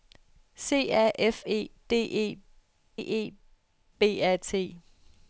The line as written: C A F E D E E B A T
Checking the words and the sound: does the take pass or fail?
pass